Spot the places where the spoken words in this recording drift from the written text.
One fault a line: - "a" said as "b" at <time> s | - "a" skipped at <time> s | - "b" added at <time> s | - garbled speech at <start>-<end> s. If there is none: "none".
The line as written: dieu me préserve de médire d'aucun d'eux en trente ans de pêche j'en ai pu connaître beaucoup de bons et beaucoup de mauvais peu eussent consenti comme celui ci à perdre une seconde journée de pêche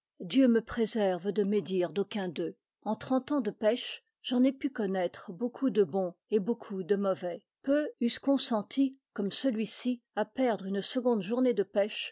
none